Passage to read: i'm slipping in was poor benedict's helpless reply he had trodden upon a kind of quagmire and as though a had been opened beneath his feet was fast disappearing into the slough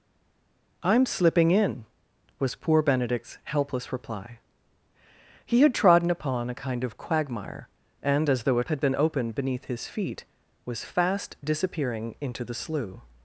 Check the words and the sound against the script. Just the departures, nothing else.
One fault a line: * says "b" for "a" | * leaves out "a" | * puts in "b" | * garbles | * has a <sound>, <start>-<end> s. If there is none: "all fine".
all fine